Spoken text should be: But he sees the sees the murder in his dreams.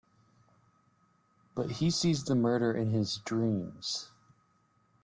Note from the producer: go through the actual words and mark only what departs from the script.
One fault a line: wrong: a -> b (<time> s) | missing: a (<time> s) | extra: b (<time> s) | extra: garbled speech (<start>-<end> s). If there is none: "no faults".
missing: sees the (2.3 s)